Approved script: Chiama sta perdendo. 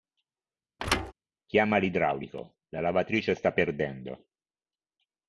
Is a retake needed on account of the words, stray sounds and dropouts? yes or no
yes